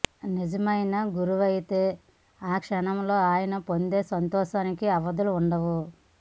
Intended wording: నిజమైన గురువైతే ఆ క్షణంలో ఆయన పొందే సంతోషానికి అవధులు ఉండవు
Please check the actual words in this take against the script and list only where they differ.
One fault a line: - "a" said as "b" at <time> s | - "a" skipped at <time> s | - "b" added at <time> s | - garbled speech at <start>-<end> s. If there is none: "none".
none